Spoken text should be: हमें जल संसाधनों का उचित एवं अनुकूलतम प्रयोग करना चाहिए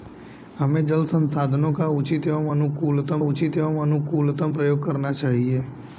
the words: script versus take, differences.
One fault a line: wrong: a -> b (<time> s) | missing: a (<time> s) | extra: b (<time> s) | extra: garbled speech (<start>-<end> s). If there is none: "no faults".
extra: उचित एवं अनुकूलतम (3.3 s)